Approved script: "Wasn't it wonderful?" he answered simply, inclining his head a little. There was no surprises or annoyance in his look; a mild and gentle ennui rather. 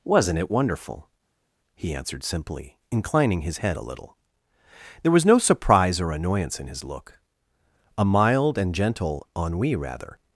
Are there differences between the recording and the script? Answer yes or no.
yes